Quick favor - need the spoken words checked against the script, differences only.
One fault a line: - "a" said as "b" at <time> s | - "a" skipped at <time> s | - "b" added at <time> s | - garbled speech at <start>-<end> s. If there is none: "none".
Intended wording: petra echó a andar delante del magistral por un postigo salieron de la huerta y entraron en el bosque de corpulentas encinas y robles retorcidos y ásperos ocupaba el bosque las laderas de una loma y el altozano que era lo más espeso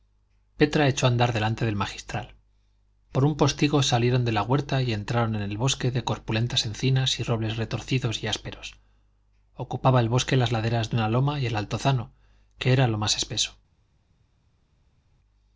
none